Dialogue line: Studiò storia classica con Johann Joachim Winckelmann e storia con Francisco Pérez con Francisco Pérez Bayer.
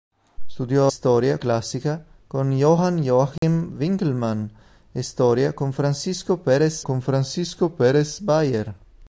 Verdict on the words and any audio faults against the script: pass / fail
fail